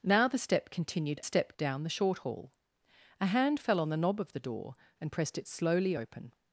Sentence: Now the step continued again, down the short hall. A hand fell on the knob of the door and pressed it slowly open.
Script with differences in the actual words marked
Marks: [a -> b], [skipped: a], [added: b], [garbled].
Now the step continued [again, -> step] down the short hall. A hand fell on the knob of the door and pressed it slowly open.